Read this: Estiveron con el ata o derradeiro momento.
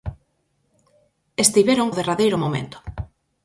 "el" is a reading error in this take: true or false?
true